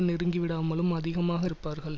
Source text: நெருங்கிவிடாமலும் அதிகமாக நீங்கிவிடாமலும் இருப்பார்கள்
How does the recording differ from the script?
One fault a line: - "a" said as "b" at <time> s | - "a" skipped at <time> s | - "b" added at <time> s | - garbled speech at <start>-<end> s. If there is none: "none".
- "நீங்கிவிடாமலும்" skipped at 1.5 s